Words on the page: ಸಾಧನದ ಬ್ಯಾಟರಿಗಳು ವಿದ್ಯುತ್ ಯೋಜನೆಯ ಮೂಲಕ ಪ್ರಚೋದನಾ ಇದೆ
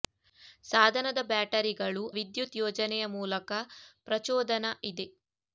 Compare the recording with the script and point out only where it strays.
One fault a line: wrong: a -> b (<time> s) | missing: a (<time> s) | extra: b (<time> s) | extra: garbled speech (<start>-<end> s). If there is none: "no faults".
no faults